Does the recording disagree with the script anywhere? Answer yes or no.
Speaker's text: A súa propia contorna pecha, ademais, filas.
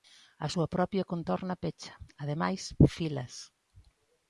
no